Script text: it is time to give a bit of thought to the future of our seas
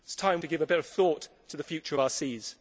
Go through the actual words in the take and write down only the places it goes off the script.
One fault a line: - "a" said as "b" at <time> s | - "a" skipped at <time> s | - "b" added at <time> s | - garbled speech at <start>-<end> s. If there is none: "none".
none